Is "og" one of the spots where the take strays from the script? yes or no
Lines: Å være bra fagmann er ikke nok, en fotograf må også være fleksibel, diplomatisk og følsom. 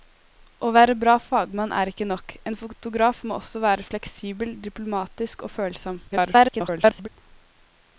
no